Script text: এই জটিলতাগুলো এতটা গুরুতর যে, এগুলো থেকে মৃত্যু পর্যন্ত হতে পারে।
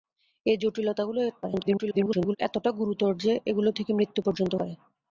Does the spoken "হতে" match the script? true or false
false